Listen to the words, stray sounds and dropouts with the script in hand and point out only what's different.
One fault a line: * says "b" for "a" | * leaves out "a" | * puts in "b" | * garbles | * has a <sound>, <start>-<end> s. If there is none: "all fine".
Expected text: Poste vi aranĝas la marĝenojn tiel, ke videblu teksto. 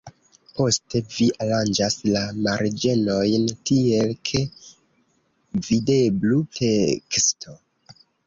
all fine